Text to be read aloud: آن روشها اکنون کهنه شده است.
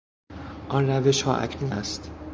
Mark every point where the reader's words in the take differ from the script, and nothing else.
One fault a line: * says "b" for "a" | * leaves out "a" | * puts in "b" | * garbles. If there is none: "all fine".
* leaves out "کهنه شده"